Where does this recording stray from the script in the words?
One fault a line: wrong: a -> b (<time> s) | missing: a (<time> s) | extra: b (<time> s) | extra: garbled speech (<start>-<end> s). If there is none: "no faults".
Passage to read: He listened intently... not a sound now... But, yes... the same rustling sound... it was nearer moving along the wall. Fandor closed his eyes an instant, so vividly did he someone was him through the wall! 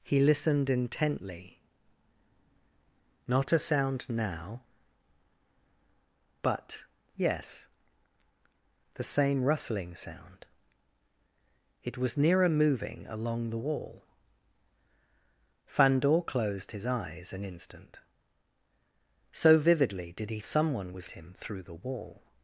no faults